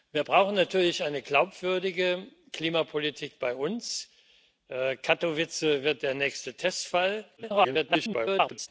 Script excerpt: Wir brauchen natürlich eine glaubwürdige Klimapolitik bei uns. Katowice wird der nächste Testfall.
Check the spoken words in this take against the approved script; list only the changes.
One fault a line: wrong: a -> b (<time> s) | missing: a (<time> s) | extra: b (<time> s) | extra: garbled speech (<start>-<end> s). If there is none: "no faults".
extra: garbled speech (7.4-8.7 s)